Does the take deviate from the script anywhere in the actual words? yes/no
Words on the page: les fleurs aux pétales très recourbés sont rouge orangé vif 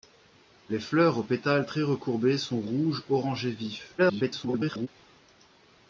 yes